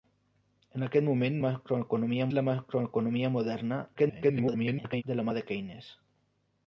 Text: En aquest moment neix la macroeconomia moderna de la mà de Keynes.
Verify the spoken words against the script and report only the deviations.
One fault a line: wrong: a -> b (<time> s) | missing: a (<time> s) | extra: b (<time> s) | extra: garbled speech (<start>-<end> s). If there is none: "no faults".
wrong: neix -> macroeconomia (1.4 s)
extra: garbled speech (3.9-5.0 s)